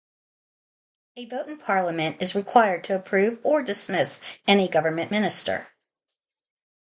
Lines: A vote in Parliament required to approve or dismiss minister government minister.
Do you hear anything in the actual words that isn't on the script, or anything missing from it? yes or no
yes